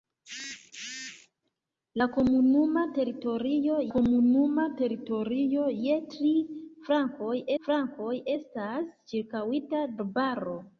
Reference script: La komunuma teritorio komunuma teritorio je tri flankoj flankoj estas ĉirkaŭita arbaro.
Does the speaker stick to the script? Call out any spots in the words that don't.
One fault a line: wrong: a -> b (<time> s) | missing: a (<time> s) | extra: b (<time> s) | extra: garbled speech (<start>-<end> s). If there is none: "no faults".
no faults